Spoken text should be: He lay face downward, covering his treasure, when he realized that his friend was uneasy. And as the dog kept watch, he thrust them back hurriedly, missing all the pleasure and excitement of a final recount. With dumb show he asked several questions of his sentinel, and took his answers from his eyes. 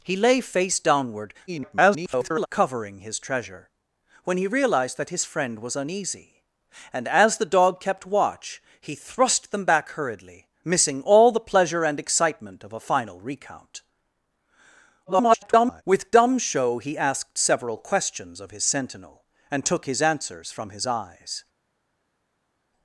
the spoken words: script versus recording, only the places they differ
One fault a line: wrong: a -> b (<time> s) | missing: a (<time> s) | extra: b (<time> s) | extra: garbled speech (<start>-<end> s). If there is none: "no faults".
extra: garbled speech (1.5-2.5 s)
extra: garbled speech (15.1-15.8 s)